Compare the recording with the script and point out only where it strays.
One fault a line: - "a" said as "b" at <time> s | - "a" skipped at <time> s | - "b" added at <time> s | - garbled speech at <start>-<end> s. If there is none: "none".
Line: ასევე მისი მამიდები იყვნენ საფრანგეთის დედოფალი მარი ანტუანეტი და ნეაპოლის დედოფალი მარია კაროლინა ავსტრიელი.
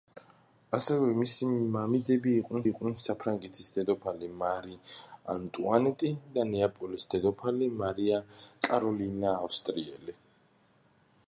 - "იყვნენ" added at 2.7 s